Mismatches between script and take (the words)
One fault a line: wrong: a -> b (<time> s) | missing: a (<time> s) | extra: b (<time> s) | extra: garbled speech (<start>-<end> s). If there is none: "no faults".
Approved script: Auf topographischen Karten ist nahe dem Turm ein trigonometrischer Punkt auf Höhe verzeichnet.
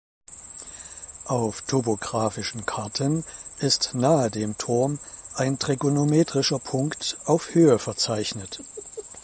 no faults